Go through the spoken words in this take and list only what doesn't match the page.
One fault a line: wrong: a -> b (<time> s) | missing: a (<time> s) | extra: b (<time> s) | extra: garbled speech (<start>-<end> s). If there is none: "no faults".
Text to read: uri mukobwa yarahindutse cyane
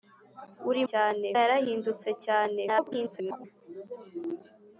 wrong: mukobwa -> cyane (0.9 s)
extra: garbled speech (2.7-3.4 s)